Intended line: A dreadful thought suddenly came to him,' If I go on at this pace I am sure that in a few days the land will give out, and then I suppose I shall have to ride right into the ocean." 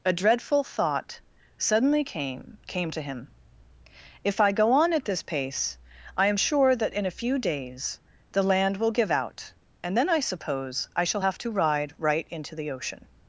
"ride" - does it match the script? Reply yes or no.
yes